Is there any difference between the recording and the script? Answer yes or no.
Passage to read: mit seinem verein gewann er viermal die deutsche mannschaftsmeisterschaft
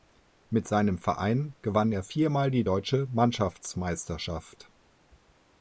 no